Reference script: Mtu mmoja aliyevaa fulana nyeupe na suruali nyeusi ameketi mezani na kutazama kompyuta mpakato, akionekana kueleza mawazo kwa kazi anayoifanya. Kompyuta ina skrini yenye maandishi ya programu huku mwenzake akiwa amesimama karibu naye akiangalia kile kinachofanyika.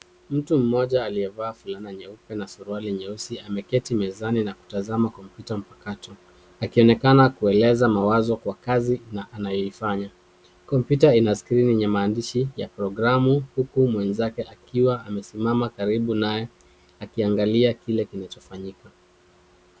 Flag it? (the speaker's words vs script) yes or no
no